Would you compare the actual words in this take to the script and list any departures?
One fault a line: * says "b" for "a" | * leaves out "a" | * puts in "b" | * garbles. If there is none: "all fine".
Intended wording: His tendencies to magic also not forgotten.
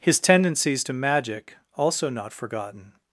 all fine